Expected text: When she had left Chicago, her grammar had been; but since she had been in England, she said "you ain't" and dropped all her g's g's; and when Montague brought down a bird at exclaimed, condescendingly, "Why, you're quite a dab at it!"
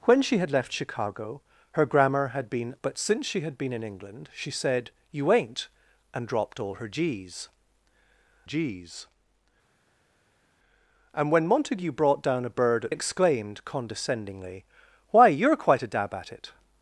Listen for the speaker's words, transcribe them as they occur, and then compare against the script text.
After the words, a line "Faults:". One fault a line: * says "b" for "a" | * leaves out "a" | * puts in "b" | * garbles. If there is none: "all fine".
When she had left Chicago, her grammar had been; but since she had been in England, she said "you ain't" and dropped all her g's g's; and when Montague brought down a bird at exclaimed, condescendingly, "Why, you're quite a dab at it!"
Faults:
all fine